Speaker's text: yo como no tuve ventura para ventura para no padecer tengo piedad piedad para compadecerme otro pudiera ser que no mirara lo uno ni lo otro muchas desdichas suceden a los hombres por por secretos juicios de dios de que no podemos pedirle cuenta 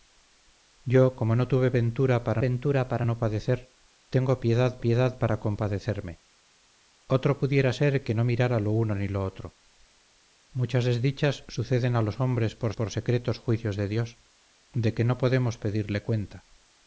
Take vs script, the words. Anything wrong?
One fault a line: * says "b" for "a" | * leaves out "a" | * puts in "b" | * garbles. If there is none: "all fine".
all fine